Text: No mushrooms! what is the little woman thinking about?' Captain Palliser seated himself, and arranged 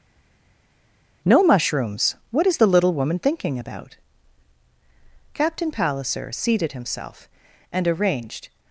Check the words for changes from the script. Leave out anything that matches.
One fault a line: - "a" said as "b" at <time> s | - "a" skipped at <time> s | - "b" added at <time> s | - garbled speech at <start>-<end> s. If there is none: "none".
none